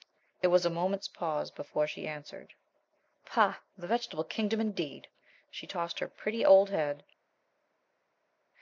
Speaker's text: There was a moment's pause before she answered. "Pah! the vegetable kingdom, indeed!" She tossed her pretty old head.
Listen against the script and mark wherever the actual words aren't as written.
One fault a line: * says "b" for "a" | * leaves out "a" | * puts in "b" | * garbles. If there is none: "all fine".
all fine